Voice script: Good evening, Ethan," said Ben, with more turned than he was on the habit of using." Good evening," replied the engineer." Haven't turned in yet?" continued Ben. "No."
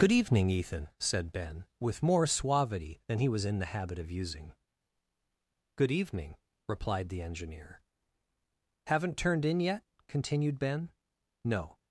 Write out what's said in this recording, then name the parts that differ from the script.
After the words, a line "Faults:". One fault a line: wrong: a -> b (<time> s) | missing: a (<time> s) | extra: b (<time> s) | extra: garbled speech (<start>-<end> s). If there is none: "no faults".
Good evening, Ethan," said Ben, with more suavity than he was in the habit of using." Good evening," replied the engineer." Haven't turned in yet?" continued Ben. "No."
Faults:
wrong: turned -> suavity (2.2 s)
wrong: on -> in (3.5 s)